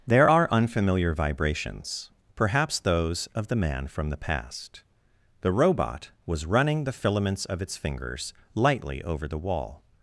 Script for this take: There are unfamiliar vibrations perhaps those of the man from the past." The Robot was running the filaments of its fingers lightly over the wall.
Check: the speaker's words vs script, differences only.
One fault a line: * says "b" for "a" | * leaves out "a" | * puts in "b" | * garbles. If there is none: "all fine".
all fine